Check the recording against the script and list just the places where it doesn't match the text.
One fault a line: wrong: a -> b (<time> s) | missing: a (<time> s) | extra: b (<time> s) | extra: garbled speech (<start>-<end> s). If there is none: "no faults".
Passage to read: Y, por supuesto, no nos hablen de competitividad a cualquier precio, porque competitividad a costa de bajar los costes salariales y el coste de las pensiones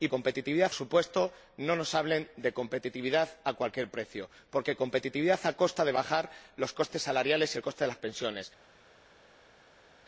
wrong: por -> competitividad (0.1 s)